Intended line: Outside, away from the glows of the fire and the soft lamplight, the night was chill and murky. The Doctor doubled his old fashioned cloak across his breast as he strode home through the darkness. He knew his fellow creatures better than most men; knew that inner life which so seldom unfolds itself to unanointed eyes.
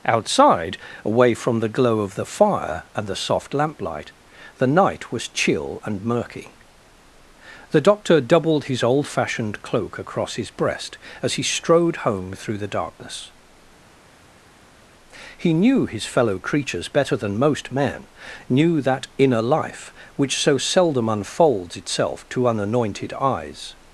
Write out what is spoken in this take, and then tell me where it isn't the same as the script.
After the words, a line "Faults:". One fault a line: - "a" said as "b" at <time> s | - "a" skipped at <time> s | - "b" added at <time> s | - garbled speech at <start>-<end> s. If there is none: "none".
Outside, away from the glow of the fire and the soft lamplight, the night was chill and murky. The Doctor doubled his old fashioned cloak across his breast as he strode home through the darkness. He knew his fellow creatures better than most men; knew that inner life which so seldom unfolds itself to unanointed eyes.
Faults:
- "glows" said as "glow" at 1.7 s